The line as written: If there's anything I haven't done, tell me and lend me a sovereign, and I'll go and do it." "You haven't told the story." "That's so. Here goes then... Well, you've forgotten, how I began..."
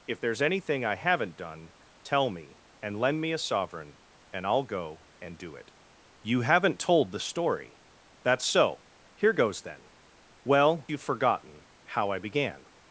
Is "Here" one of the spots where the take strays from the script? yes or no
no